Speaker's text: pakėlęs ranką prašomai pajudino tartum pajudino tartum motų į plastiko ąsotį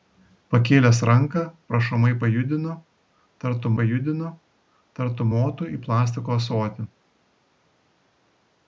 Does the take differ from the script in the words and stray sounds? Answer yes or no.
no